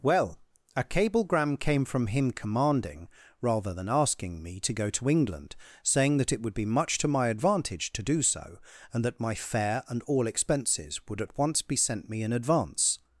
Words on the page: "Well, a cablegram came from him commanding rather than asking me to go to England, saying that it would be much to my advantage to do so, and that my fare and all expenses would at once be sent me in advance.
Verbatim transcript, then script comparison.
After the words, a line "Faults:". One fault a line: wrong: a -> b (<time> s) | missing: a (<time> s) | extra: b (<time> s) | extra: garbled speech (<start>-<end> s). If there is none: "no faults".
"Well, a cablegram came from him commanding rather than asking me to go to England, saying that it would be much to my advantage to do so, and that my fare and all expenses would at once be sent me in advance.
Faults:
no faults